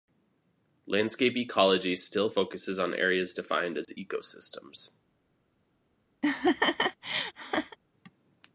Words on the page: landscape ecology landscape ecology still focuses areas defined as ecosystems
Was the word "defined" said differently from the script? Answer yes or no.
no